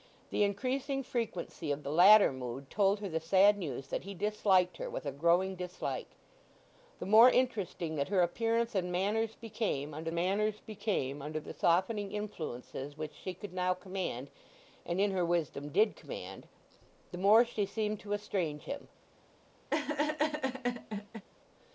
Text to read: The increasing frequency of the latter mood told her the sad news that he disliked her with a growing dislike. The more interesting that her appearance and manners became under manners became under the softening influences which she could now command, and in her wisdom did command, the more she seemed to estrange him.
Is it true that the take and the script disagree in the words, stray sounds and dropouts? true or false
true